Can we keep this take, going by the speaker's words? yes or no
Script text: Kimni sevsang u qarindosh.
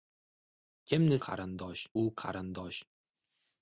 no